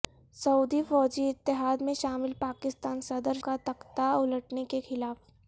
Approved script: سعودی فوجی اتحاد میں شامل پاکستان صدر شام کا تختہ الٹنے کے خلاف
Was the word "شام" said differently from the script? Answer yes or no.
yes